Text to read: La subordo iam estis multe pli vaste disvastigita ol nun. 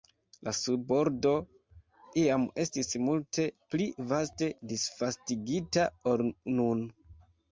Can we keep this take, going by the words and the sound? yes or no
yes